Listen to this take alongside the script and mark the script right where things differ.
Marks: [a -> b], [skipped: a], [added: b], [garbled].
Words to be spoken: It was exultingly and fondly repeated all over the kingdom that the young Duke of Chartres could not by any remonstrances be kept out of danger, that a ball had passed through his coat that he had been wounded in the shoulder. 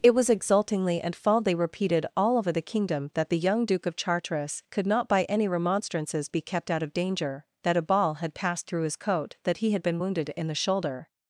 It was exultingly and fondly repeated all over the kingdom that the young Duke of Chartres could not by any remonstrances be kept out of danger, that a ball had passed through his coat that he had been wounded in the shoulder.